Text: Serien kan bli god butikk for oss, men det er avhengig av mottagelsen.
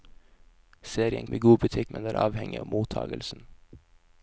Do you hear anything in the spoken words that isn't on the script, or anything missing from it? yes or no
yes